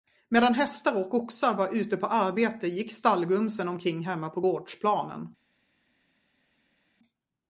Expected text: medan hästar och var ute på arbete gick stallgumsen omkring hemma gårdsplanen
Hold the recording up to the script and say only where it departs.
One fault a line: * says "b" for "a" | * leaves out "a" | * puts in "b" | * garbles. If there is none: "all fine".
* puts in "oxar"
* puts in "på"